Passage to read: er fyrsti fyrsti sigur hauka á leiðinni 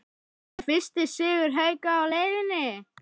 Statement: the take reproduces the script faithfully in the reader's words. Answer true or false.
false